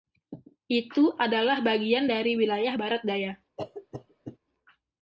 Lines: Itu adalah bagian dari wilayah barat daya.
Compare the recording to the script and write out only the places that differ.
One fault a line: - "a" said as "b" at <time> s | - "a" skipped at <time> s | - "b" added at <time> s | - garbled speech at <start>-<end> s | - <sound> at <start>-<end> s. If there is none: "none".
- cough at 3.6-4.4 s